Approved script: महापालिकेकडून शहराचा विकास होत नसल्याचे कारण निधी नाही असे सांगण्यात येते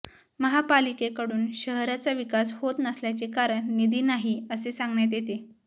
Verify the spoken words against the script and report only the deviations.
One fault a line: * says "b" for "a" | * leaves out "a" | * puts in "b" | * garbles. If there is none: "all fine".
all fine